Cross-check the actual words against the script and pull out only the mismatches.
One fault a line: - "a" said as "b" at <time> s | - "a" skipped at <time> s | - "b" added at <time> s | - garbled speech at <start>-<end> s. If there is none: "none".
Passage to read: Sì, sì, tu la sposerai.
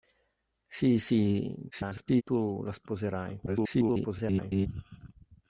- garbled speech at 1.7-2.2 s
- garbled speech at 3.5-4.7 s